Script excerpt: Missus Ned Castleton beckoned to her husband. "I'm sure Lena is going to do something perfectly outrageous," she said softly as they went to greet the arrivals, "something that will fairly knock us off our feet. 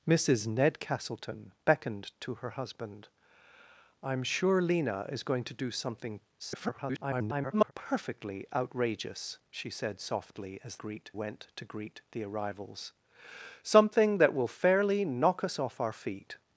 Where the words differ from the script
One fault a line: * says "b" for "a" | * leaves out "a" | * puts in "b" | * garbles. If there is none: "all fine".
* garbles
* says "greet" for "they"